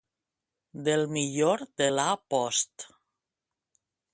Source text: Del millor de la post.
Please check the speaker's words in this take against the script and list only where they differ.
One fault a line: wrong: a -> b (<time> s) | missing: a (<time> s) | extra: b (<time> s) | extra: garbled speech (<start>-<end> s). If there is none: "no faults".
no faults